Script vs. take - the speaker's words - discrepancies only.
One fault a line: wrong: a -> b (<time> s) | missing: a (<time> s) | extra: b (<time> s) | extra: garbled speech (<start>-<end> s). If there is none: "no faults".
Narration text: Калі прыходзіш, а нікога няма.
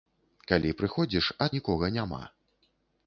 no faults